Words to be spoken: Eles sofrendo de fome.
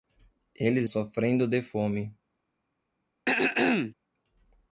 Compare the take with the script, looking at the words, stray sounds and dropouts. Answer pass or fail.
fail